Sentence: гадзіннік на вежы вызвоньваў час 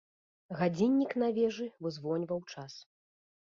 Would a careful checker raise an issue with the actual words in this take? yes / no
no